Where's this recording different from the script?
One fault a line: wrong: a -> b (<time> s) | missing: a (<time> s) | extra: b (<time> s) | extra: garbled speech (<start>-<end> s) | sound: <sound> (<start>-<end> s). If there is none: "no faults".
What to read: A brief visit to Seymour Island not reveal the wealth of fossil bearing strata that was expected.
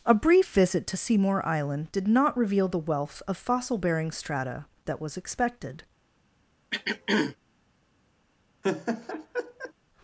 extra: did (1.9 s)
sound: throat clearing (6.7-7.4 s)
sound: laugh (8.6-9.7 s)